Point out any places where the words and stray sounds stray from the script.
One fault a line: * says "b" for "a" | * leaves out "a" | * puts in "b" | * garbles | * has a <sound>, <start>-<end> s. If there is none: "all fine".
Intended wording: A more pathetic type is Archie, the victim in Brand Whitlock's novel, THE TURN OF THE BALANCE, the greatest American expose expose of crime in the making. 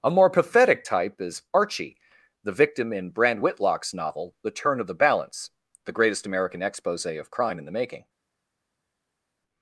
* leaves out "expose"